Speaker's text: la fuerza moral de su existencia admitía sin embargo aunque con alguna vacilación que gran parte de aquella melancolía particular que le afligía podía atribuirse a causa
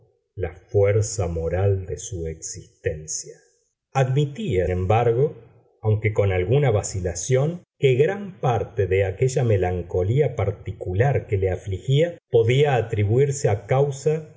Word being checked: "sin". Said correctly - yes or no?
no